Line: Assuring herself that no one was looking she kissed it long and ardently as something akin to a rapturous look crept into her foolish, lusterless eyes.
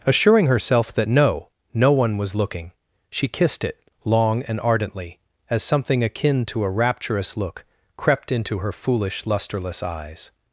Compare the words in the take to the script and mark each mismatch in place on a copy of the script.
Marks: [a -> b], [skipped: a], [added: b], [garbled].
Assuring herself that no [added: no] one was looking she kissed it long and ardently as something akin to a rapturous look crept into her foolish, lusterless eyes.